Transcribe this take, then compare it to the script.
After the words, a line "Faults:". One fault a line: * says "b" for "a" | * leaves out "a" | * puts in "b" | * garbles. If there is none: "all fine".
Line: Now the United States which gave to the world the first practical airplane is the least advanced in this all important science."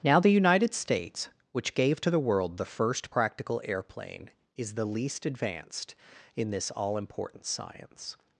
Now the United States which gave to the world the first practical airplane is the least advanced in this all important science."
Faults:
all fine